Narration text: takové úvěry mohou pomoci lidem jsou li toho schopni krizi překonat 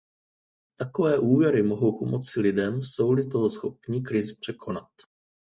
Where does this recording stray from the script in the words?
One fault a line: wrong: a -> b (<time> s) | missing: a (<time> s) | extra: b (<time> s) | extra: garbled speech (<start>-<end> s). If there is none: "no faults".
no faults